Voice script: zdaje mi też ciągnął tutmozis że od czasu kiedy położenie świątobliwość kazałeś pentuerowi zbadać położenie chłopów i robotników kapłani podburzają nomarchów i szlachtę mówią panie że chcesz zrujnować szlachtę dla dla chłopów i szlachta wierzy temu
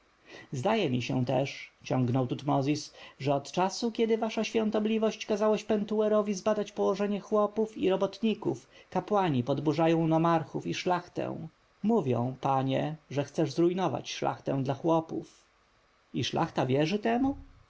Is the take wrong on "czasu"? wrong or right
right